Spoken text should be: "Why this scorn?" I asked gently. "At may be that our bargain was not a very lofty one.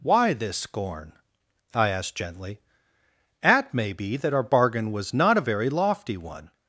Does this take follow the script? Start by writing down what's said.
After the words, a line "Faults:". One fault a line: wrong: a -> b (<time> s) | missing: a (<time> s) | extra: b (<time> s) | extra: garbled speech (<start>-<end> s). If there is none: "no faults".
"Why this scorn?" I asked gently. "At may be that our bargain was not a very lofty one.
Faults:
no faults